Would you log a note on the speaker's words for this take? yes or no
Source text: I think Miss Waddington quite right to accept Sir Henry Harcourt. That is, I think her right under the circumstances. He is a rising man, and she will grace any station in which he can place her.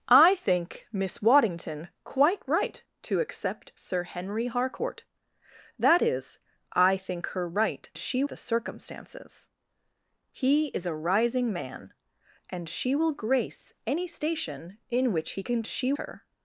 yes